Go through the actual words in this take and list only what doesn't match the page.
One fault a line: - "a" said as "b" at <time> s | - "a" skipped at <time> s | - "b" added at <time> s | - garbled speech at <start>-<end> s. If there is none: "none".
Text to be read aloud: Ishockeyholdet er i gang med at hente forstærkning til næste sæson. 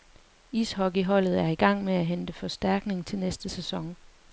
none